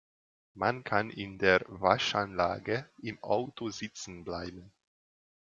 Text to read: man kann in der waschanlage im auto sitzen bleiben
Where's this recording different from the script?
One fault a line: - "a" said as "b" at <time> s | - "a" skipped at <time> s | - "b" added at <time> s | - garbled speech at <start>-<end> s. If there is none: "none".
none